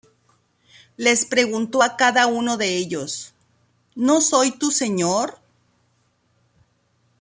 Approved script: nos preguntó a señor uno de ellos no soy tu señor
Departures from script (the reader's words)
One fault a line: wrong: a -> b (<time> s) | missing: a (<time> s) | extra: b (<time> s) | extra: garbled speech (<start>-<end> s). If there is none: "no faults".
wrong: nos -> les (1.0 s)
wrong: señor -> cada (2.0 s)